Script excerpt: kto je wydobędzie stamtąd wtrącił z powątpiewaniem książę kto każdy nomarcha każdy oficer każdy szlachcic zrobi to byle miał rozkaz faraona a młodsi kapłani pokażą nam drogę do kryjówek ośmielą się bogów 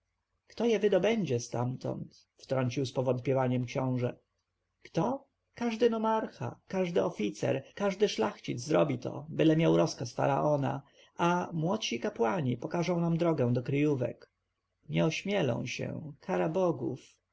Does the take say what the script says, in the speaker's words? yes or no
no